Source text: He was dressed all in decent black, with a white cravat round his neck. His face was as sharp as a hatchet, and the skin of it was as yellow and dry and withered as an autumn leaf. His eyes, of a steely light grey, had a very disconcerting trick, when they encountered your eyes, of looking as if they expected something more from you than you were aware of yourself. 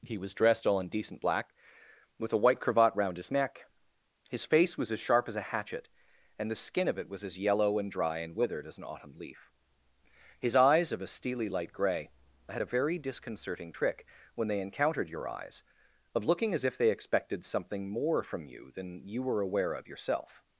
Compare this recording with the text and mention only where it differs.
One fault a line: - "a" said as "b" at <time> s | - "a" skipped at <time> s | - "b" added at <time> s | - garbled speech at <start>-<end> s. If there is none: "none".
none